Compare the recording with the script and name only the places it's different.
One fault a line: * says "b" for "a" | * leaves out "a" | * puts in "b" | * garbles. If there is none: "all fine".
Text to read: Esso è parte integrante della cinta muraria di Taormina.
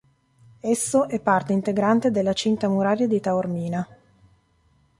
all fine